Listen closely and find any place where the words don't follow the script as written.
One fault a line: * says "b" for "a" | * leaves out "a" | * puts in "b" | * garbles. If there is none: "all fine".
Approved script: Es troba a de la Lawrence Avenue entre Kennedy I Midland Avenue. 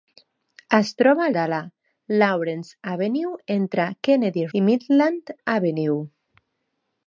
all fine